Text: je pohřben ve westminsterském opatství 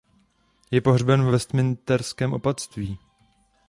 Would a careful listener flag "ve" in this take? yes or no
no